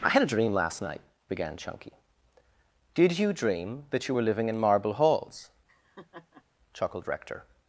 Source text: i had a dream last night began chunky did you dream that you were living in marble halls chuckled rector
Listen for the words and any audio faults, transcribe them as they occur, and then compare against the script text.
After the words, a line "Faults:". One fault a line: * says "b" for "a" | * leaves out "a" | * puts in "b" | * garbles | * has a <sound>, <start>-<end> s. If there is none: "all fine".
i had a dream last night began chunky did you dream that you were living in marble halls chuckled rector
Faults:
* has a laugh, 5.7-6.4 s